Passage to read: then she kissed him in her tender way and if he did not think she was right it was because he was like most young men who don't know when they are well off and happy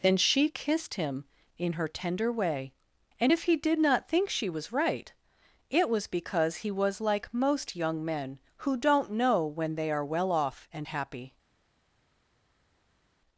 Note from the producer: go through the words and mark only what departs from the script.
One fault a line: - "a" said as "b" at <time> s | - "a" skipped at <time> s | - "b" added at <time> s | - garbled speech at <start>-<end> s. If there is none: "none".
none